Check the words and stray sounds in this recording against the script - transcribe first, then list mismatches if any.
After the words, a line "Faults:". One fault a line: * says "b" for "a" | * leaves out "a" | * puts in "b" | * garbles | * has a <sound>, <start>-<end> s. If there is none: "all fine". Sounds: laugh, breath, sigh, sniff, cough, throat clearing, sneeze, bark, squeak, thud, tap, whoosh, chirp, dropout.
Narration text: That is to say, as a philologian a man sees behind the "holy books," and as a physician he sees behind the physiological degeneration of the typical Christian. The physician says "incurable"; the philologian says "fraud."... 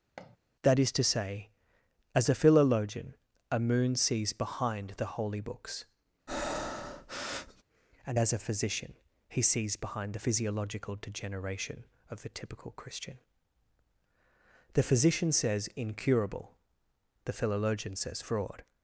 That is to say, as a philologian a moon sees behind the "holy books," and as a physician he sees behind the physiological degeneration of the typical Christian. The physician says "incurable"; the philologian says "fraud."...
Faults:
* has a thud, 0.2-0.4 s
* says "moon" for "man"
* has a breath, 6.3-7.6 s